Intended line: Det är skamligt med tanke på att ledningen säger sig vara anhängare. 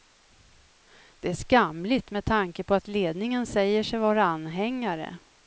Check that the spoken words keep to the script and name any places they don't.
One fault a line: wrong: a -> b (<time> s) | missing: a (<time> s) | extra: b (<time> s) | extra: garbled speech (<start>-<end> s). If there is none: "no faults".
no faults